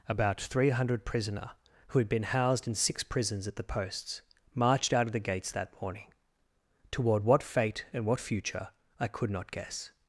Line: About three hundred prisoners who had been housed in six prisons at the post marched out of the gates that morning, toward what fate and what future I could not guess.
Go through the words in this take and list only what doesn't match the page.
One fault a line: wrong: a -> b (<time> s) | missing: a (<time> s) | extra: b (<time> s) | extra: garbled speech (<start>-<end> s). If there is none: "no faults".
wrong: prisoners -> prisoner (1.1 s)
wrong: post -> posts (3.6 s)